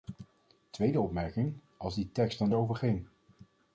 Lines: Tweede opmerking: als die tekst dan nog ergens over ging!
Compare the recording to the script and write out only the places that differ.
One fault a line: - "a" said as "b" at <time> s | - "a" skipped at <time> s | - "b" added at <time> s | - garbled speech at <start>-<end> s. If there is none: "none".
- "nog ergens" skipped at 2.5 s